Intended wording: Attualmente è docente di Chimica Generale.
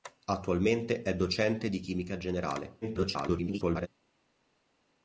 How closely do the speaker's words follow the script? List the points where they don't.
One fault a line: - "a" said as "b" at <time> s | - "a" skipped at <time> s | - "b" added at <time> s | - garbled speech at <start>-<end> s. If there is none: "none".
- garbled speech at 2.8-3.9 s